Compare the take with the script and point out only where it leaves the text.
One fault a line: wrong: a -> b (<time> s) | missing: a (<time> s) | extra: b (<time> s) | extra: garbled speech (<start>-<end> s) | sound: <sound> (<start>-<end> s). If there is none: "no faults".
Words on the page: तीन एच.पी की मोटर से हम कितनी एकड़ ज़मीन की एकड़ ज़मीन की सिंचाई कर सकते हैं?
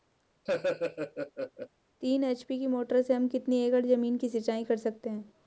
sound: laugh (0.5-1.7 s)
missing: एकड़ ज़मीन की (4.3 s)